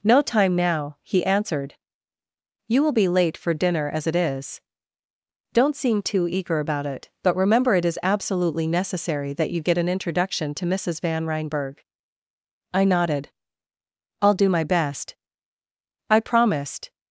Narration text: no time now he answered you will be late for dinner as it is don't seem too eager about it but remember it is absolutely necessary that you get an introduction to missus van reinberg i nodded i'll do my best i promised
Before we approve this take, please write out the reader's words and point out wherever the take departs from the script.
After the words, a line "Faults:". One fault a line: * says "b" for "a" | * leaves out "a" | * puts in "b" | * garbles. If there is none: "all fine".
no time now he answered you will be late for dinner as it is don't seem too eager about it but remember it is absolutely necessary that you get an introduction to missus van reinberg i nodded i'll do my best i promised
Faults:
all fine